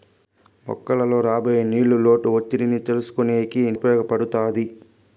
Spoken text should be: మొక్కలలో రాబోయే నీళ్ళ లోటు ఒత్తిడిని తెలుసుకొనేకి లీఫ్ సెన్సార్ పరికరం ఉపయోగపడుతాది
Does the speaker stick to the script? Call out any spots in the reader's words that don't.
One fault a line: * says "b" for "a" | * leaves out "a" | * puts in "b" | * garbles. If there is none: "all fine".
* leaves out "లీఫ్ సెన్సార్ పరికరం"